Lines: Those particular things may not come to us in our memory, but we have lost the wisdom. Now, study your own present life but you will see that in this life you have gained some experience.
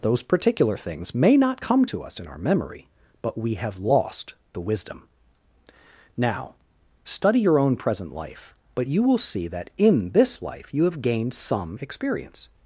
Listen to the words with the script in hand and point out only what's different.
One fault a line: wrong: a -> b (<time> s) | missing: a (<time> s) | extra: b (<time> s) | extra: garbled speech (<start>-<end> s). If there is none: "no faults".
no faults